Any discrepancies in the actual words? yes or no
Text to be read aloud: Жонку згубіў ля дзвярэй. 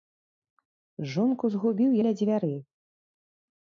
no